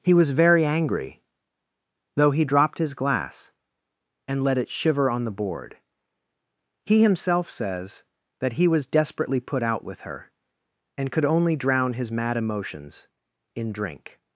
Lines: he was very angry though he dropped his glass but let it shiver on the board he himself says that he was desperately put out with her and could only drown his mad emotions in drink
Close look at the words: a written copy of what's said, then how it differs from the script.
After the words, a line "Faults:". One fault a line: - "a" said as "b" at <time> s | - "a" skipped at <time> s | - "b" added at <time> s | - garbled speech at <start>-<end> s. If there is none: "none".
he was very angry though he dropped his glass and let it shiver on the board he himself says that he was desperately put out with her and could only drown his mad emotions in drink
Faults:
- "but" said as "and" at 4.3 s